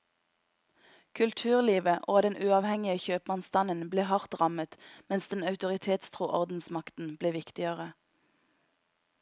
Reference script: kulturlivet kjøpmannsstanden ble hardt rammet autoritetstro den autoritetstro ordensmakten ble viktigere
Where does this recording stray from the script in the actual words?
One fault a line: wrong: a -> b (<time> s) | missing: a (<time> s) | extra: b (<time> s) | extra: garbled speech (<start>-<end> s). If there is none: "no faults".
extra: og den uavhengige (2.1 s)
wrong: autoritetstro -> mens (5.1 s)